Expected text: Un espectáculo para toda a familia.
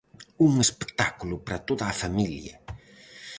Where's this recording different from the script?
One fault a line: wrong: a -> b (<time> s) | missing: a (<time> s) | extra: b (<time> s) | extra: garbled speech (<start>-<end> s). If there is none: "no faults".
no faults